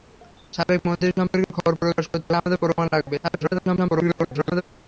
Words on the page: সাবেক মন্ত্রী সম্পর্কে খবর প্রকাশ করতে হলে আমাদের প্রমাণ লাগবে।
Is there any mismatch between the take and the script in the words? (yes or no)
yes